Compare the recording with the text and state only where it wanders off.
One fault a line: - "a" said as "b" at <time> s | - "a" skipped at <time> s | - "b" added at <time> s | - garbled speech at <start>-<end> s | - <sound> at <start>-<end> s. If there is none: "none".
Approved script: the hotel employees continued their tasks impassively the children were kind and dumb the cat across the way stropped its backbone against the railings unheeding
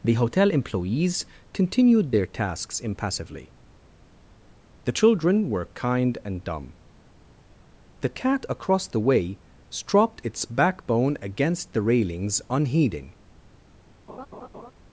- laugh at 14.1-14.7 s